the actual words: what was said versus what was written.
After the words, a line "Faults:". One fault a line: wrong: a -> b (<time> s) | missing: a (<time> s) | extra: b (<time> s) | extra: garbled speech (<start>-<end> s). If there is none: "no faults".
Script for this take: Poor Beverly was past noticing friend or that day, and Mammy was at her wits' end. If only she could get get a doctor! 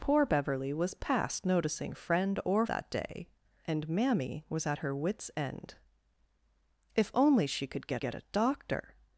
Poor Beverly was past noticing friend or that day, and Mammy was at her wits' end. If only she could get get a doctor!
Faults:
no faults